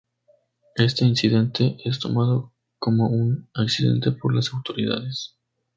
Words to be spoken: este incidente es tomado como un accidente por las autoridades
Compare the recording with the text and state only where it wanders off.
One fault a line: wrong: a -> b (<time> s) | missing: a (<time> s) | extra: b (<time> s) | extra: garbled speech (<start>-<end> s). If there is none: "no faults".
no faults